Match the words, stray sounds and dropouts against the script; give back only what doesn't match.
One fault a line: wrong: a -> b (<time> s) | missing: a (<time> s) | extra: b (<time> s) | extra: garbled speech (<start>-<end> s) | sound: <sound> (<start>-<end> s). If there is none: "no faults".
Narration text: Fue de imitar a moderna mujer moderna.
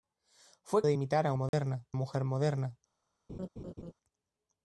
sound: dropout (1.5-1.5 s)
sound: laugh (3.3-3.9 s)